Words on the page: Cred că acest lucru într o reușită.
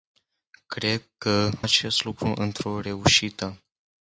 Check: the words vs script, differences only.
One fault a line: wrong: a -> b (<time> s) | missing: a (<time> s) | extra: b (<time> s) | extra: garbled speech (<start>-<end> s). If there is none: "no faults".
no faults